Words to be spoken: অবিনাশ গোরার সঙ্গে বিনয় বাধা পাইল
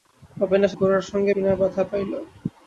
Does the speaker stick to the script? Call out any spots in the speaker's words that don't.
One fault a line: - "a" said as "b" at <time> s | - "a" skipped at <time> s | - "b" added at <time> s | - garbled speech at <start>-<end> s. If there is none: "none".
none